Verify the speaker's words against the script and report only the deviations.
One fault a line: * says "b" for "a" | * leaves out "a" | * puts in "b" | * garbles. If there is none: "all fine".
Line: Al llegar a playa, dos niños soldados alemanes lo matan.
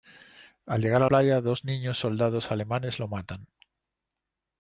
all fine